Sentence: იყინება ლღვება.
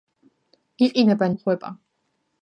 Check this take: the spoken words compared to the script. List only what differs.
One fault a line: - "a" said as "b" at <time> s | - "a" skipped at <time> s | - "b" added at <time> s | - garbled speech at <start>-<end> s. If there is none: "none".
none